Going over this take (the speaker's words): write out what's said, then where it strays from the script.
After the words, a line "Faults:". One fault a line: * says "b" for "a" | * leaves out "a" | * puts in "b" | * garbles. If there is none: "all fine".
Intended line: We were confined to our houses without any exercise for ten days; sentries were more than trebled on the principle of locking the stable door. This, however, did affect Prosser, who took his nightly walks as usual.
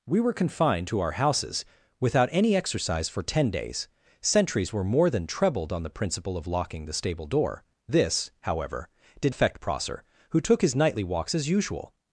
We were confined to our houses without any exercise for ten days; sentries were more than trebled on the principle of locking the stable door. This, however, did affect Prosser, who took his nightly walks as usual.
Faults:
all fine